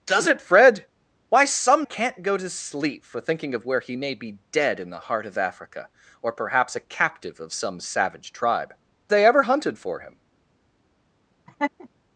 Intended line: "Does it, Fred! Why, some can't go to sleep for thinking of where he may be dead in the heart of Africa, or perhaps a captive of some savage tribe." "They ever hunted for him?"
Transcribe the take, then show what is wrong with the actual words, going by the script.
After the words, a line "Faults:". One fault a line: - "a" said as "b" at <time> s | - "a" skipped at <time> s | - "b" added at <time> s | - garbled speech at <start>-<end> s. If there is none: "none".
"Does it, Fred! Why, some can't go to sleep for thinking of where he may be dead in the heart of Africa, or perhaps a captive of some savage tribe." "They ever hunted for him?"
Faults:
none